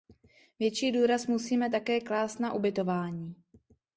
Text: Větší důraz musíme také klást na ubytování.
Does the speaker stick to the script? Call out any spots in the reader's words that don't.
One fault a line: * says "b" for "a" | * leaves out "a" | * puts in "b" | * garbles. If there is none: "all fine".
all fine